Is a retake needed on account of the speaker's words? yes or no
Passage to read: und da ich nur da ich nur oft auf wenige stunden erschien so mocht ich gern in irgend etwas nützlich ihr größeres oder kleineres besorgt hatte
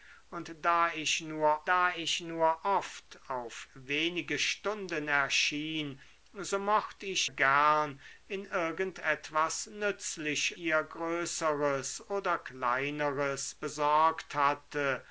no